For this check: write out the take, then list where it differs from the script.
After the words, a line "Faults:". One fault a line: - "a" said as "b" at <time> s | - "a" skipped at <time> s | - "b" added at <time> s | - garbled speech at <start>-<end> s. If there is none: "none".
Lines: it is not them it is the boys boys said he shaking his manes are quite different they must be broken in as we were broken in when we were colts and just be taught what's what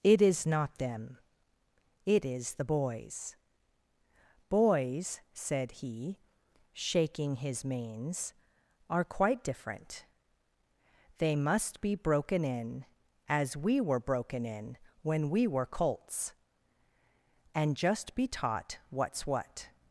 it is not them it is the boys boys said he shaking his manes are quite different they must be broken in as we were broken in when we were colts and just be taught what's what
Faults:
none